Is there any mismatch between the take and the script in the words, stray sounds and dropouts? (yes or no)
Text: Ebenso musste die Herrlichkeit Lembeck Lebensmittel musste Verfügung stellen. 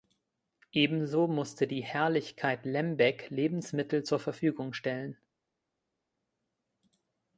yes